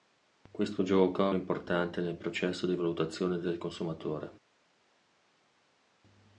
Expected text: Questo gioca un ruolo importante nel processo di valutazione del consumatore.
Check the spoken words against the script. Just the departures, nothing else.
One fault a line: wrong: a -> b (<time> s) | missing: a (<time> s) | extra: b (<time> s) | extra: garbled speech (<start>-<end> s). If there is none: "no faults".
missing: un ruolo (1.3 s)